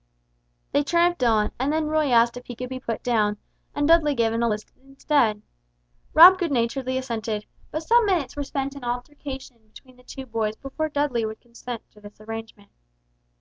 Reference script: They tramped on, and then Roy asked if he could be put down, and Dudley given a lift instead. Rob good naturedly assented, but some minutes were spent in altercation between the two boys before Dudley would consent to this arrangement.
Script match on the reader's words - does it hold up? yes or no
yes